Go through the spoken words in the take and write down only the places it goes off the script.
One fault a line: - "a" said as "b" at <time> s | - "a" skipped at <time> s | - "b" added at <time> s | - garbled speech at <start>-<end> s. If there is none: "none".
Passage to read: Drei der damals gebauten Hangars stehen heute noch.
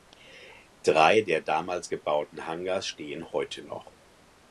none